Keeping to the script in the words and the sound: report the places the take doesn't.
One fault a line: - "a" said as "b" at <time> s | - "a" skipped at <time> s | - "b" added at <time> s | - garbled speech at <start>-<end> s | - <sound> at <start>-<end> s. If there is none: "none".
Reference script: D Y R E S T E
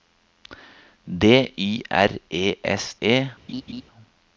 - "T" skipped at 3.0 s
- laugh at 3.5-3.8 s